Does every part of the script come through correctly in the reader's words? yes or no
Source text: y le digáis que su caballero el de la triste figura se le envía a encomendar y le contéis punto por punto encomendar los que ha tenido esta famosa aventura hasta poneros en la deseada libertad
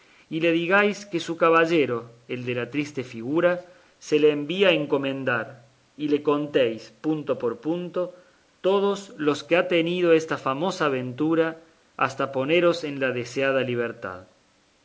no